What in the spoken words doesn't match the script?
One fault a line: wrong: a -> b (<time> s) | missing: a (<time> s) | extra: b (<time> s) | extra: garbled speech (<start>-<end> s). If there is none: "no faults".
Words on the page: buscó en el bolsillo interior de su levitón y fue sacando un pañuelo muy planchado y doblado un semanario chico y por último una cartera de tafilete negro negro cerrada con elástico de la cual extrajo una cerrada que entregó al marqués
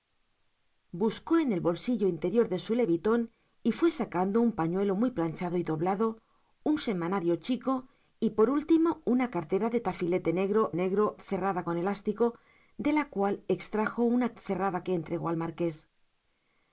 no faults